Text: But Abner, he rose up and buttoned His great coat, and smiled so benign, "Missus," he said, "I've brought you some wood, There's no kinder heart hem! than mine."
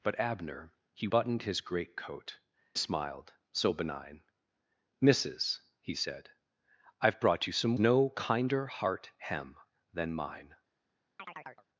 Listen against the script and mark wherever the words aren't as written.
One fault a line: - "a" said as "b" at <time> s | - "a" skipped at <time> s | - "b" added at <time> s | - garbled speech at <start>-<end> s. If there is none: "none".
- "rose up and" skipped at 1.1 s
- "and" skipped at 2.4 s
- "wood There's" skipped at 7.8 s